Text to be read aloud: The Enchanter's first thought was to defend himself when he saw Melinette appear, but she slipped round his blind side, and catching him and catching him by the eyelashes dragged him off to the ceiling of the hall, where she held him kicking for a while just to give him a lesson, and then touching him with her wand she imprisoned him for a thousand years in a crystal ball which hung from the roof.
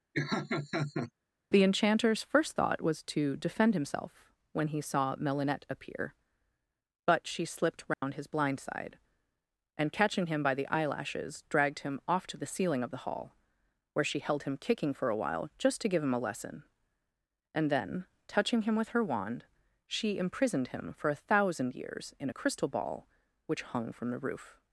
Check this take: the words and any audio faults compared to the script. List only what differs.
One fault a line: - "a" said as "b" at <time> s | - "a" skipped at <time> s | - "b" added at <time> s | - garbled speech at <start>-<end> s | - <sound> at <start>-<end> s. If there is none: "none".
- laugh at 0.1-1.1 s
- dropout at 7.9-8.0 s
- "and catching him" skipped at 10.4 s